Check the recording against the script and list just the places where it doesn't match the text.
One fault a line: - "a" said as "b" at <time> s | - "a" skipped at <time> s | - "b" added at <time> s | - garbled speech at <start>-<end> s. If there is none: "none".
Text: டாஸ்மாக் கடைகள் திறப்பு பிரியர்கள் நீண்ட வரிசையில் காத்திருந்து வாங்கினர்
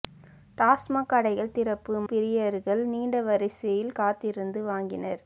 none